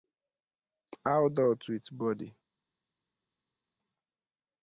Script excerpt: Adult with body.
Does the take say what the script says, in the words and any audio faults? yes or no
yes